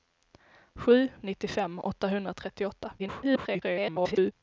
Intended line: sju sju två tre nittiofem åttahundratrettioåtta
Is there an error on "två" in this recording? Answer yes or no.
yes